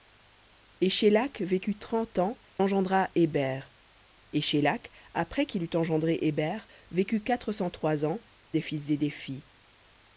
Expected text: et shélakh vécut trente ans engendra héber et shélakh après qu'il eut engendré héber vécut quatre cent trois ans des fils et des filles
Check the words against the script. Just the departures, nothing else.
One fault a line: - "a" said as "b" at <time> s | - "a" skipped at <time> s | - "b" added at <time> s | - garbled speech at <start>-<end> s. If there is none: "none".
none